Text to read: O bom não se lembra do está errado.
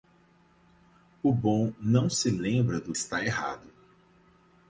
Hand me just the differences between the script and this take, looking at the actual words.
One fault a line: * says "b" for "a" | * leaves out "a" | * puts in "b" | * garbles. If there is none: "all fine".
all fine